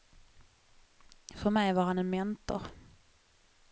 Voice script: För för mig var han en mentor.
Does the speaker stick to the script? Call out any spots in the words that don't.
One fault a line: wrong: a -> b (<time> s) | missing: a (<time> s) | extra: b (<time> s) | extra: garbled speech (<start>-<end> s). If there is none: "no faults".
missing: för (1.5 s)